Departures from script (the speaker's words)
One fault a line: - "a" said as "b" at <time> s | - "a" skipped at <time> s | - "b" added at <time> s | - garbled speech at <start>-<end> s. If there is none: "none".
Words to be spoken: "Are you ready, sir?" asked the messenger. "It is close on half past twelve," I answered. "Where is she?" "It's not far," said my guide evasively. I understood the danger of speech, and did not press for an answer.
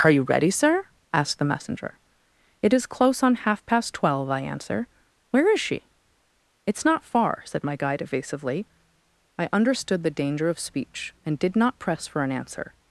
- "answered" said as "answer" at 4.4 s